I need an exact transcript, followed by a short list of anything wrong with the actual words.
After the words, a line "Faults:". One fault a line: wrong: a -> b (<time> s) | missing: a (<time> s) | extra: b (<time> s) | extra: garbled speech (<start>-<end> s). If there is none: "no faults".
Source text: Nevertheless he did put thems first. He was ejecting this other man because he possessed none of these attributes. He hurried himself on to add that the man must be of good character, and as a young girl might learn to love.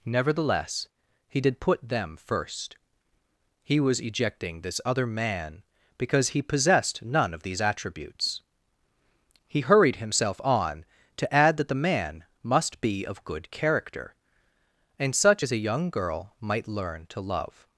Nevertheless he did put them first. He was ejecting this other man because he possessed none of these attributes. He hurried himself on to add that the man must be of good character, and such as a young girl might learn to love.
Faults:
wrong: thems -> them (1.9 s)
extra: such (15.2 s)